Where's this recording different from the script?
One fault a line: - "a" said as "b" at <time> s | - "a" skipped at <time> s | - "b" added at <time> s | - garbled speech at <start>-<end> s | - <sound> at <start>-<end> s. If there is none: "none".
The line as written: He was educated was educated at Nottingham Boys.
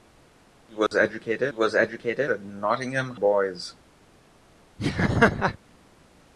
- dropout at 0.9-0.9 s
- laugh at 4.8-5.6 s